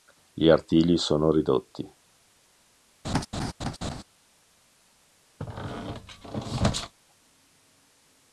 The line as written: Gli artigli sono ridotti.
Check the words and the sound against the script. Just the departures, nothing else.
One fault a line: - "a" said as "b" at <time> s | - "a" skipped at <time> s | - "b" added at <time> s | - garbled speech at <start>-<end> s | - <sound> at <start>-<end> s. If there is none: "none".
- laugh at 3.0-4.0 s
- squeak at 5.4-6.9 s